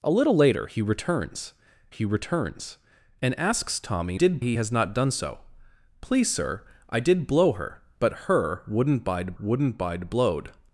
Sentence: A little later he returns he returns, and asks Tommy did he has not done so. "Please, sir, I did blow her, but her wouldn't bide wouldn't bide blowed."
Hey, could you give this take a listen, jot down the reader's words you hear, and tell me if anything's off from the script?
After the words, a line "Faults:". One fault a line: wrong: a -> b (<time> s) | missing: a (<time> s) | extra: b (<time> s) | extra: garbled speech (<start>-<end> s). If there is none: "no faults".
A little later he returns he returns, and asks Tommy did he has not done so. "Please, sir, I did blow her, but her wouldn't bide wouldn't bide blowed."
Faults:
no faults